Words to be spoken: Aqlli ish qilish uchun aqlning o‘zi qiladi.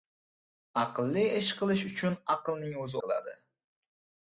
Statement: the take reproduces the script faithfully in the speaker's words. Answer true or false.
true